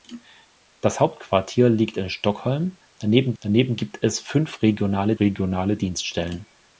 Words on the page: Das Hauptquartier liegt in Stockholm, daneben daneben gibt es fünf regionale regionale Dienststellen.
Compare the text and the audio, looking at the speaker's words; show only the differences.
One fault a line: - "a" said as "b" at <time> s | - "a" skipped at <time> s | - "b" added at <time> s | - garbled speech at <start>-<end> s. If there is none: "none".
none